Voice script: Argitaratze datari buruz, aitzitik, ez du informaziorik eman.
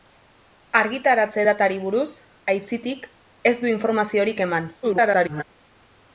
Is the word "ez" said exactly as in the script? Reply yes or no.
yes